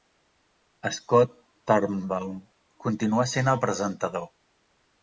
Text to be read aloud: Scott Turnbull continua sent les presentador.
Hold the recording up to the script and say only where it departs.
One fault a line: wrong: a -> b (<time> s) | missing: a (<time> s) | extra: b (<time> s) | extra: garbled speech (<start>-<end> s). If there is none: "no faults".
wrong: les -> el (3.5 s)